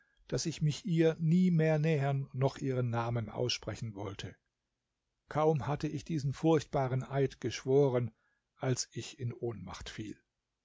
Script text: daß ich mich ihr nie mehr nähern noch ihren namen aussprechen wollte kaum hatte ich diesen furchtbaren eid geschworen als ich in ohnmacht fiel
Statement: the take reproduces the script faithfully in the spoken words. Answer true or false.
true